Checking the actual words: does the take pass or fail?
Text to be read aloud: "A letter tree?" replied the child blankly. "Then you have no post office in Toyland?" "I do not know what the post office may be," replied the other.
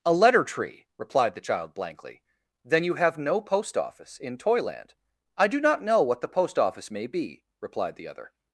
pass